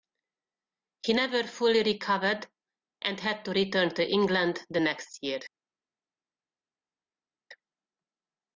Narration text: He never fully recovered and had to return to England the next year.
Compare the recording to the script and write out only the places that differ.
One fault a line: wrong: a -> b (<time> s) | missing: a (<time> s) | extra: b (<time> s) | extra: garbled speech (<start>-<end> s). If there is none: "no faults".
no faults